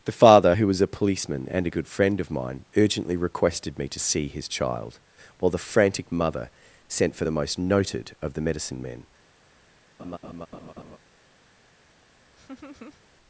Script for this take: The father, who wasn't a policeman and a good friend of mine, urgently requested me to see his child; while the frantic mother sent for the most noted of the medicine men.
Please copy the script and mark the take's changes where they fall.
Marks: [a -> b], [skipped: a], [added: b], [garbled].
The father, who [wasn't -> was] a policeman and a good friend of mine, urgently requested me to see his child; while the frantic mother sent for the most noted of the medicine men.